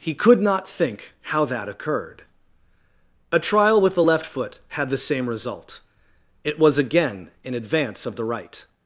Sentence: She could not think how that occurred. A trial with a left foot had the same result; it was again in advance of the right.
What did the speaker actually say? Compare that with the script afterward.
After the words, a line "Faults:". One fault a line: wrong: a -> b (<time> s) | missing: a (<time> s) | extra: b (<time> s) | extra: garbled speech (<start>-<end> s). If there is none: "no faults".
He could not think how that occurred. A trial with the left foot had the same result; it was again in advance of the right.
Faults:
wrong: She -> He (0.0 s)
wrong: a -> the (3.9 s)